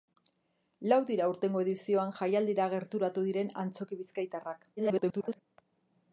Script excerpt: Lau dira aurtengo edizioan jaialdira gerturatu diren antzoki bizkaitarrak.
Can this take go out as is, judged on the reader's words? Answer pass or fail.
fail